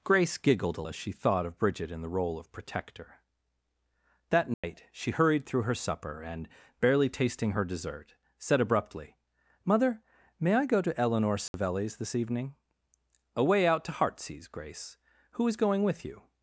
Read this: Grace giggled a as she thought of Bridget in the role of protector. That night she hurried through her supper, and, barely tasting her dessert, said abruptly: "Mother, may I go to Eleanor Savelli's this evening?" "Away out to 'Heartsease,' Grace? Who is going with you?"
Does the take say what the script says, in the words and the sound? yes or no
no